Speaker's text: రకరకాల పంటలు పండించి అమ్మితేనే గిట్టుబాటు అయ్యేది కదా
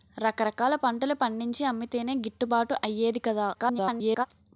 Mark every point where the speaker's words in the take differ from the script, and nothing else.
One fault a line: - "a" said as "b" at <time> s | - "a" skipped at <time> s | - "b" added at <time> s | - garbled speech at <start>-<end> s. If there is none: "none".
- garbled speech at 3.5-4.3 s